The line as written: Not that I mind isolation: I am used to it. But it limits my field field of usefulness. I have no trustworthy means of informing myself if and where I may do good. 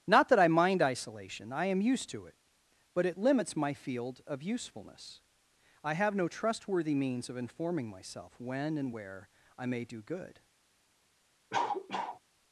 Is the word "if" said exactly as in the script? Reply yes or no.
no